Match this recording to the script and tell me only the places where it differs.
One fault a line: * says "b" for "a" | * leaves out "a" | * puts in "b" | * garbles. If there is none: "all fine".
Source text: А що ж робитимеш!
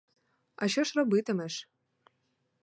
all fine